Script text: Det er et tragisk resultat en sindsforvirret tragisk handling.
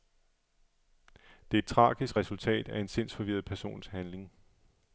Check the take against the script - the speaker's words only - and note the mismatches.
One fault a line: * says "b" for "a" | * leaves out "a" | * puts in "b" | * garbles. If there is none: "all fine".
* puts in "af"
* says "persons" for "tragisk"